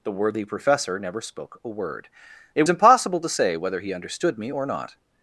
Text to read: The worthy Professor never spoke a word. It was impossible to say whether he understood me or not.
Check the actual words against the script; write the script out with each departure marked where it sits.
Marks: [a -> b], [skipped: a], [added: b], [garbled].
The worthy Professor never spoke a word. It [skipped: was] impossible to say whether he understood me or not.